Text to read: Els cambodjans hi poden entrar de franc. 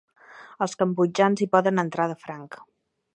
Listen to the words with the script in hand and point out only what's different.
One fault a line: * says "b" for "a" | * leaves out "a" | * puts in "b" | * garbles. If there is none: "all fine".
all fine